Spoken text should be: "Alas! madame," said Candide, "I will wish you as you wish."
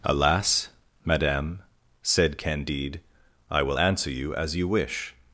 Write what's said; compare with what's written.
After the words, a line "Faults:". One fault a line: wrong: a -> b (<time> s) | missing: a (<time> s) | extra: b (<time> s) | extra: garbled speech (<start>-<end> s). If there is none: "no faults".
"Alas! madame," said Candide, "I will answer you as you wish."
Faults:
wrong: wish -> answer (3.8 s)